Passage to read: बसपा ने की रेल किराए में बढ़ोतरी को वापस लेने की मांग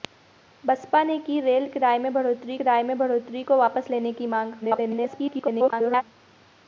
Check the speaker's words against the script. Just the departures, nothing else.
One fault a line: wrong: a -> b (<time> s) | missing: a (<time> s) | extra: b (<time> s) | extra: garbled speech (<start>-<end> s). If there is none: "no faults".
extra: किराए में बढ़ोतरी (2.6 s)
extra: garbled speech (4.6-6.0 s)